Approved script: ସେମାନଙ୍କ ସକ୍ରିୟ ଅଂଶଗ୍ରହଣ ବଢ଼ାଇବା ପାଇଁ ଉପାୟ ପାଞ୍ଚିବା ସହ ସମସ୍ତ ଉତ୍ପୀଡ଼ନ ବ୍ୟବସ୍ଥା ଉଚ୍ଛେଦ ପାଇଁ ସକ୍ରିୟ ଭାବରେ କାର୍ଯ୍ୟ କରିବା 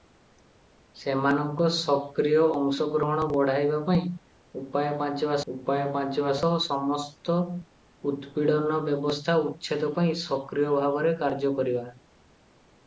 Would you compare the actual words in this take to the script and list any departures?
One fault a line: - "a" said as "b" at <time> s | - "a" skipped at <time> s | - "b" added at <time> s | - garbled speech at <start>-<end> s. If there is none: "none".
- "ଉପାୟ ପାଞ୍ଚିବା" added at 5.5 s